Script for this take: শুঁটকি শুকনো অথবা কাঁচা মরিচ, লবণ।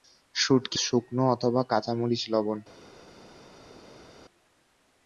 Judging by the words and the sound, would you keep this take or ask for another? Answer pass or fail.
pass